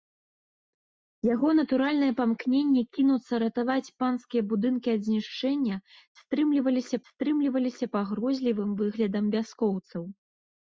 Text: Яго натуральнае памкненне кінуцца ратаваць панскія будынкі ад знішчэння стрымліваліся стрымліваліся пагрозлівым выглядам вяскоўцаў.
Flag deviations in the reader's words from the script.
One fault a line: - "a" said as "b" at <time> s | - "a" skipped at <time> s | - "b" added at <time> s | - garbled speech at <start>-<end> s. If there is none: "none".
none